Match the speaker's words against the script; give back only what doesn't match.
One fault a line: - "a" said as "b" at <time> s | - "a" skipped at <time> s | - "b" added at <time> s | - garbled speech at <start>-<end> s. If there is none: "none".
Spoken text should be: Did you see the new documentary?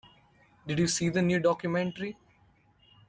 none